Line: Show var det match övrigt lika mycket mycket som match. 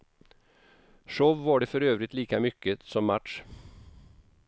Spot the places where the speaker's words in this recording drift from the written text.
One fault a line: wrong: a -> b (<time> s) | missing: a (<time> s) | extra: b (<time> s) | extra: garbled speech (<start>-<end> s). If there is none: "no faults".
wrong: match -> för (1.7 s)
missing: mycket (2.8 s)